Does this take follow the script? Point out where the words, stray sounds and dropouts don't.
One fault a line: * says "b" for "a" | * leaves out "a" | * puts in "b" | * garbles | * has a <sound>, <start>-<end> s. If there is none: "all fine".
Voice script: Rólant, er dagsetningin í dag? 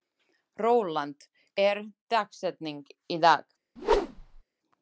* has a whoosh, 3.8-4.4 s